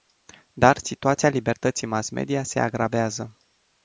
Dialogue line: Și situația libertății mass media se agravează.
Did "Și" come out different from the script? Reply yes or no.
yes